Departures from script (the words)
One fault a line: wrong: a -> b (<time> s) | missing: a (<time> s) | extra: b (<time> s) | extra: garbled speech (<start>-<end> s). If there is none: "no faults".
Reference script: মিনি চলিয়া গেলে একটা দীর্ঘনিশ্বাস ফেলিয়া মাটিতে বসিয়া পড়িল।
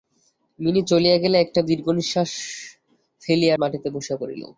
no faults